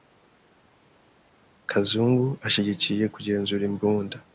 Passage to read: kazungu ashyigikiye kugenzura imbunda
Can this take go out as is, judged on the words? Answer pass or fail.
pass